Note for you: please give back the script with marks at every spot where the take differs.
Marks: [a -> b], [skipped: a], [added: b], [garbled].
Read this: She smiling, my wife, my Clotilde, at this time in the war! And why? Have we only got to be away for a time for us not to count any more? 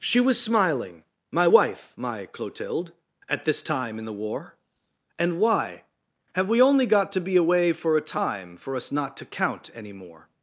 She [added: was] smiling, my wife, my Clotilde, at this time in the war! And why? Have we only got to be away for a time for us not to count any more?